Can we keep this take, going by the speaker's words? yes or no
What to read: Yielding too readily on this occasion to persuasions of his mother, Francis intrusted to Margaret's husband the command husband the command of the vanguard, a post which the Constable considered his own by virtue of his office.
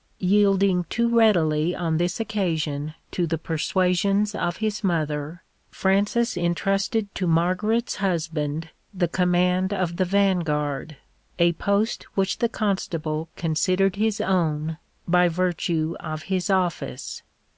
no